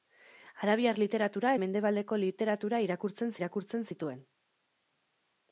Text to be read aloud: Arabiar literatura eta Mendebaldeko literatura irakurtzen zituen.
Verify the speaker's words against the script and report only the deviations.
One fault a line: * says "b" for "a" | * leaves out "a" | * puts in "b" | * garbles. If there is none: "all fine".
* leaves out "eta"
* puts in "irakurtzen"